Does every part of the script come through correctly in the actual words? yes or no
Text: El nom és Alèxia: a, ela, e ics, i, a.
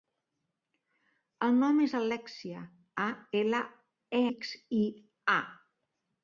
yes